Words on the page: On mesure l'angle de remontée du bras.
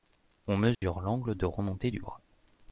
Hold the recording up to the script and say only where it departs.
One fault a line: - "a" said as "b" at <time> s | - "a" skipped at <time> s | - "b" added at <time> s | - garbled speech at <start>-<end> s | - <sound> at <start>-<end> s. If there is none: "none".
- dropout at 0.7-0.8 s